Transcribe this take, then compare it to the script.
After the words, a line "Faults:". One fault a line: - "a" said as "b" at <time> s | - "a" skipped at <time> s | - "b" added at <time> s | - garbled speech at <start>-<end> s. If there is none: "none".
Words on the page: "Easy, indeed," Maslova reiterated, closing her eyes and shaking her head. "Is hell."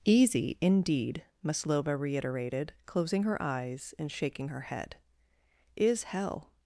"Easy, indeed," Maslova reiterated, closing her eyes and shaking her head. "Is hell."
Faults:
none